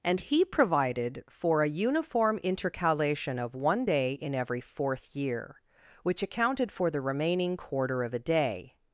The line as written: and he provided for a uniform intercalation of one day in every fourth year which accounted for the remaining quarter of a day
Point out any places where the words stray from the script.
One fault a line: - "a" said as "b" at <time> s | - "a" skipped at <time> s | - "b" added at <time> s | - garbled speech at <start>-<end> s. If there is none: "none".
none